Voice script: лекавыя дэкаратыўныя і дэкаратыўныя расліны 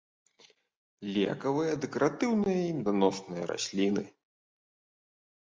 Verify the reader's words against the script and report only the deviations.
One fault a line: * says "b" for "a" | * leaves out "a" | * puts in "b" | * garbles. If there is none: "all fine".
* says "меданосныя" for "дэкаратыўныя"